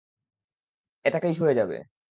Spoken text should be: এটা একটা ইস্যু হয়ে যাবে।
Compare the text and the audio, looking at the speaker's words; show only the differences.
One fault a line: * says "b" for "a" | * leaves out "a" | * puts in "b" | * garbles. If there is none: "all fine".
all fine